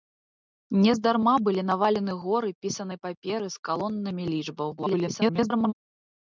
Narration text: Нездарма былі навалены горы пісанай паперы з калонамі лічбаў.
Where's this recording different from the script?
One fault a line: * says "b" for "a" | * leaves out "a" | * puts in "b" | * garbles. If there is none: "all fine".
* garbles